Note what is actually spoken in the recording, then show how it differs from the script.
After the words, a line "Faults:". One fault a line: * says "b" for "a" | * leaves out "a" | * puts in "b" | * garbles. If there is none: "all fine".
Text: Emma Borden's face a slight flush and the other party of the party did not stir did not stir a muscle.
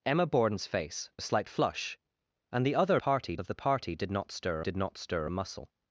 Emma Borden's face a slight flush and the other party of the party did not stir did not stir a muscle.
Faults:
all fine